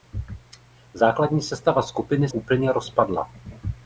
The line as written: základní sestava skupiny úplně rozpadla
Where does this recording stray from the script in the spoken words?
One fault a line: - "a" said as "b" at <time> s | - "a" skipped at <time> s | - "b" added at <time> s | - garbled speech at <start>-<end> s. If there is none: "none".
none